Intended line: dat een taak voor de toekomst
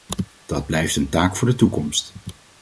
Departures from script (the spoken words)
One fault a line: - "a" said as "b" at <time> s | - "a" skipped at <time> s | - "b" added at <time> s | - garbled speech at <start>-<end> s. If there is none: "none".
- "blijft" added at 0.7 s